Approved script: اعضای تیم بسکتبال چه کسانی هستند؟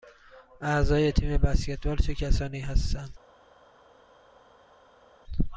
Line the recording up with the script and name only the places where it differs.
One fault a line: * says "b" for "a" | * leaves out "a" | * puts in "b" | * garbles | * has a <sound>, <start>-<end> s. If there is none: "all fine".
all fine